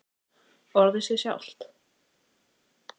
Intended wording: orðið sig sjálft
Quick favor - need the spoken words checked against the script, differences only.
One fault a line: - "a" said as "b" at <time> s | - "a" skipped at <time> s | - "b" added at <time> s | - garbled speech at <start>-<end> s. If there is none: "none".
none